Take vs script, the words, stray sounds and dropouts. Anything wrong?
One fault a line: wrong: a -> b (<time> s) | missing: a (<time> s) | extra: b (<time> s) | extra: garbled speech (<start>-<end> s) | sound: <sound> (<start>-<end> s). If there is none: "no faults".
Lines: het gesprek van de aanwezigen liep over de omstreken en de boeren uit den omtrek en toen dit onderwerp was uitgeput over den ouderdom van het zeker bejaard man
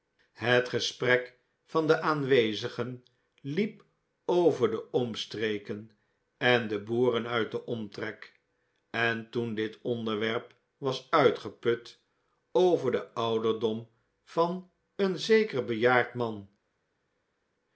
wrong: het -> een (15.0 s)